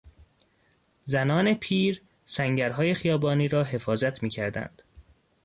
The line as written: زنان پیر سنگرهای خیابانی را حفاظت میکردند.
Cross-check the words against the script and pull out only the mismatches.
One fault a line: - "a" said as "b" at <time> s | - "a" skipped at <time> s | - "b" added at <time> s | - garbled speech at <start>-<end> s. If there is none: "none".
none